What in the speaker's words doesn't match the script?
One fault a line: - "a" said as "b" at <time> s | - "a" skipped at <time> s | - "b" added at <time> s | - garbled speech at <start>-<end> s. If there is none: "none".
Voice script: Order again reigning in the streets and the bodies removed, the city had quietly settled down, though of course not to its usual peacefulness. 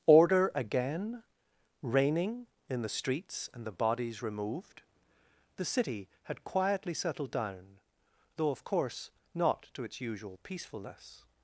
none